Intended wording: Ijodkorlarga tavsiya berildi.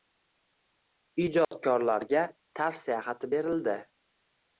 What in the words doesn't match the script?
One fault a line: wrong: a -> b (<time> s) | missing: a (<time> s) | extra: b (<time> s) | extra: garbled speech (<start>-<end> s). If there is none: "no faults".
extra: xati (3.1 s)